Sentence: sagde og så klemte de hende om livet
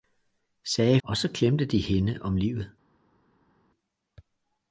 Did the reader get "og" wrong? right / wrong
right